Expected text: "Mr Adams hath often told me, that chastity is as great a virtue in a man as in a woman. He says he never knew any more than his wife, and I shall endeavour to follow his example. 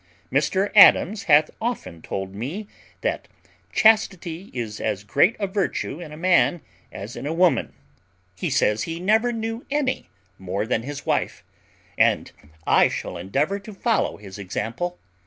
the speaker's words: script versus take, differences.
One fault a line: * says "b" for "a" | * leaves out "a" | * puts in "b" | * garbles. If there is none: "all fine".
all fine